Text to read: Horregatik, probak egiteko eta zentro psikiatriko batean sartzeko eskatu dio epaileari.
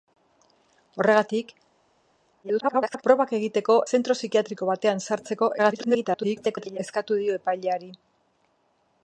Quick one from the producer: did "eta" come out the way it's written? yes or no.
no